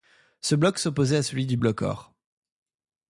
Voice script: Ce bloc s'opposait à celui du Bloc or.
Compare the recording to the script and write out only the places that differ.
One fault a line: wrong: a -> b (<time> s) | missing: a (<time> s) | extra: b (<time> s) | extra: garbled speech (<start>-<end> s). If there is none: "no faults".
no faults